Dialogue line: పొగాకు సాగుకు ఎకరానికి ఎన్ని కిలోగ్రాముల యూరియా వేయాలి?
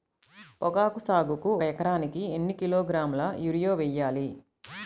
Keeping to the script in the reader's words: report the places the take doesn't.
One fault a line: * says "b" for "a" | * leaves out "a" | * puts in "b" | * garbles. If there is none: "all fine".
all fine